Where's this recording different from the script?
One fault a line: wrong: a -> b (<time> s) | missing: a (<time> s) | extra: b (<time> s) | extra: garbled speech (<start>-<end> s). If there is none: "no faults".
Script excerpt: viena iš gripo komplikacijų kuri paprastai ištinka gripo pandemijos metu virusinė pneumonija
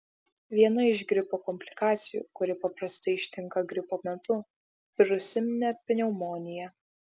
missing: pandemijos (4.0 s)